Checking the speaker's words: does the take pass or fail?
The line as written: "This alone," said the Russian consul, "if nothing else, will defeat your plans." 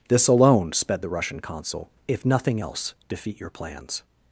fail